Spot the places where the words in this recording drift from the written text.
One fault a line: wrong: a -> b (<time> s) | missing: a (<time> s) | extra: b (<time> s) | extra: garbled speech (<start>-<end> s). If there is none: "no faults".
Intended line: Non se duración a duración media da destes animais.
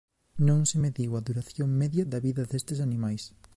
wrong: duración -> mediu (0.8 s)
extra: vida (2.3 s)